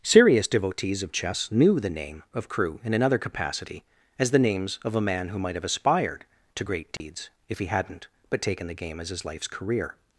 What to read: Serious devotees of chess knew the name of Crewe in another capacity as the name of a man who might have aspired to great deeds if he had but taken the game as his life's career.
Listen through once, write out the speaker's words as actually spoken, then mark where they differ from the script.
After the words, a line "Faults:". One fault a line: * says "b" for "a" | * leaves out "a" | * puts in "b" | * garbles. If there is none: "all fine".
Serious devotees of chess knew the name of Crewe in another capacity as the names of a man who might have aspired to great deeds if he hadn't but taken the game as his life's career.
Faults:
* says "names" for "name"
* says "hadn't" for "had"